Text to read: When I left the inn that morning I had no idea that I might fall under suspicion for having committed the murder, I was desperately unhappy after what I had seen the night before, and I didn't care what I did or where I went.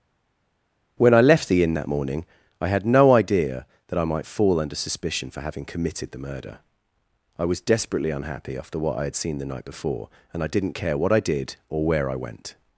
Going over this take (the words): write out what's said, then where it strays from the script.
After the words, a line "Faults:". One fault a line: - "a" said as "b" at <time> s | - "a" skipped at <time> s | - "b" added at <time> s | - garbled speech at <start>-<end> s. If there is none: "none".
When I left the inn that morning I had no idea that I might fall under suspicion for having committed the murder, I was desperately unhappy after what I had seen the night before, and I didn't care what I did or where I went.
Faults:
none